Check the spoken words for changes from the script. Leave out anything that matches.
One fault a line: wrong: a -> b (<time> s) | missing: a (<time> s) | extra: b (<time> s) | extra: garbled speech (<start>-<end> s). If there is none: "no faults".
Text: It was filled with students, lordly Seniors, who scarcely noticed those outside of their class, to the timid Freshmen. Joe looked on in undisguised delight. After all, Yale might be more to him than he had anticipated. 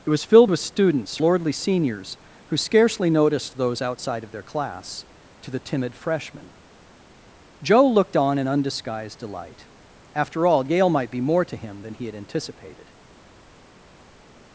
no faults